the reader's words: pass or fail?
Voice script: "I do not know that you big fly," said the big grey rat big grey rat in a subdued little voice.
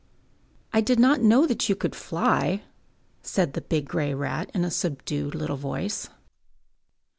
fail